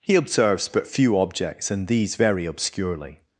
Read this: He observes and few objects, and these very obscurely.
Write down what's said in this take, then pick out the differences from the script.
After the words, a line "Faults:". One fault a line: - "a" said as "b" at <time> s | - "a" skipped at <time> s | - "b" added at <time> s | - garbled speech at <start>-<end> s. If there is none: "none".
He observes but few objects, and these very obscurely.
Faults:
- "and" said as "but" at 0.7 s